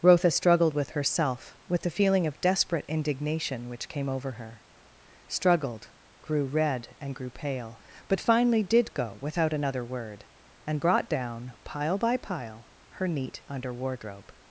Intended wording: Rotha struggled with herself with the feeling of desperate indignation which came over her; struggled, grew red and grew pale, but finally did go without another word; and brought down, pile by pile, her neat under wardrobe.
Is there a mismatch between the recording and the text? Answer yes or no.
no